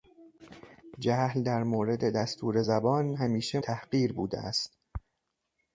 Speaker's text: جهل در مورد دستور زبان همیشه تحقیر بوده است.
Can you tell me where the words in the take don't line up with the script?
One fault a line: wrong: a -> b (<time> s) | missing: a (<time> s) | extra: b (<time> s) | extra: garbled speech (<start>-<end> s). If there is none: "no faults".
no faults